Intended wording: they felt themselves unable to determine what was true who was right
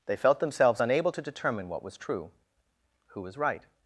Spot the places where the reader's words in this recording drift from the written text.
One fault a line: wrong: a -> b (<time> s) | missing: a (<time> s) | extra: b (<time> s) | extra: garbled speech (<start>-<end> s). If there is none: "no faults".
no faults